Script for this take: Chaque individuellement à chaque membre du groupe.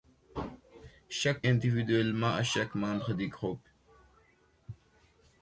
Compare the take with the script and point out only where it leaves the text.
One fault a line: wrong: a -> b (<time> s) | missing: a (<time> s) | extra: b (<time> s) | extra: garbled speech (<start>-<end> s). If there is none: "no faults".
no faults